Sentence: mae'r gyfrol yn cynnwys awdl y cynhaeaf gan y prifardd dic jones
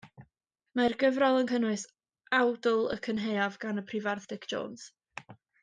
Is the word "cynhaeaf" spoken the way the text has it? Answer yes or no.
yes